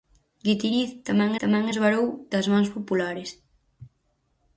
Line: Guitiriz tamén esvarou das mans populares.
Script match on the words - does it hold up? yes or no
no